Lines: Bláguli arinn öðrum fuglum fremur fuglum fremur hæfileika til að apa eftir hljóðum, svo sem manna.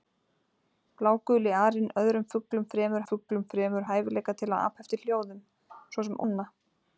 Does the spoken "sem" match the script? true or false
true